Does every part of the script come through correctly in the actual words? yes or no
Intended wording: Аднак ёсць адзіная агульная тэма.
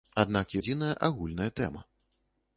no